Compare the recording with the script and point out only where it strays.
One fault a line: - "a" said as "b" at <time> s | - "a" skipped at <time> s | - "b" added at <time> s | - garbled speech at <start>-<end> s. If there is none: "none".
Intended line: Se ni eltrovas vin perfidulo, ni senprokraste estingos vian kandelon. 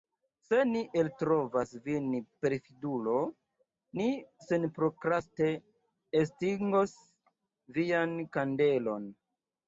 none